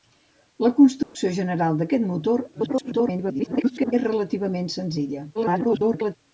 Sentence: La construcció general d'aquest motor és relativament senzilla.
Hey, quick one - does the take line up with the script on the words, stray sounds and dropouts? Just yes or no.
no